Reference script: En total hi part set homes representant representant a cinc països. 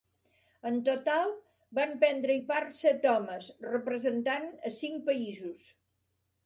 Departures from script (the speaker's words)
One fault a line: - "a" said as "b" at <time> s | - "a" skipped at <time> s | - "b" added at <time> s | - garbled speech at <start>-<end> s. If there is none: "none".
- "van prendre" added at 1.8 s
- "representant" skipped at 4.5 s